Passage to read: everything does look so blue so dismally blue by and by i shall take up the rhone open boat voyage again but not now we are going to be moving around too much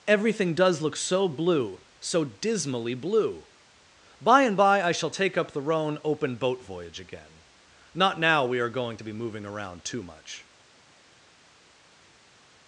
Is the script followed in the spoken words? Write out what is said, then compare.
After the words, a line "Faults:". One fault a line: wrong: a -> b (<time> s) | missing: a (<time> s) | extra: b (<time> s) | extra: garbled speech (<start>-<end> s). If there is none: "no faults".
everything does look so blue so dismally blue by and by i shall take up the rhone open boat voyage again not now we are going to be moving around too much
Faults:
missing: but (7.4 s)